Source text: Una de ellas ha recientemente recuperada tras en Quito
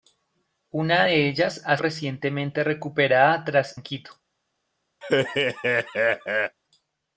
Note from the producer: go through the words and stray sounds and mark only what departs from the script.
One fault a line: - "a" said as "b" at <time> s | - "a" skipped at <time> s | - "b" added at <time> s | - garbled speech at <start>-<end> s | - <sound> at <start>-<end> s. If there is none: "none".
- laugh at 5.0-6.6 s